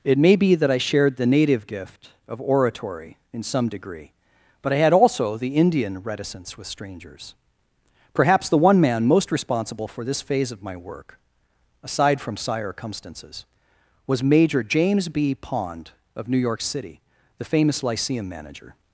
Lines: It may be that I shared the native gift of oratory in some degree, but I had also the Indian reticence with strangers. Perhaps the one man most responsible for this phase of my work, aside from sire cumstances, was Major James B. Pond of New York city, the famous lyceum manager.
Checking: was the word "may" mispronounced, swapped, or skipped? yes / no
no